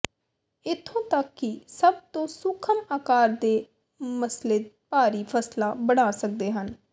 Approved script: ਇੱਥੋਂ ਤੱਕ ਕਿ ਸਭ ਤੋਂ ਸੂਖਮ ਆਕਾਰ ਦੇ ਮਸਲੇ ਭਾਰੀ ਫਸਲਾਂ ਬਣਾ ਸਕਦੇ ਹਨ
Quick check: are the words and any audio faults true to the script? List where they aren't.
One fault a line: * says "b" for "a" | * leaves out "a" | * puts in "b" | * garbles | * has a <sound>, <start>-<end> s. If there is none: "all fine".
all fine